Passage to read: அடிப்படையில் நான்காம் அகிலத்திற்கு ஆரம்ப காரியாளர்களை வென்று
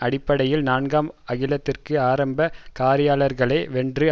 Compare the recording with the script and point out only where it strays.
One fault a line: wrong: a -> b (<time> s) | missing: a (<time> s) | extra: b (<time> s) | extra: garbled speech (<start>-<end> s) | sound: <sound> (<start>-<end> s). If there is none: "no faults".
no faults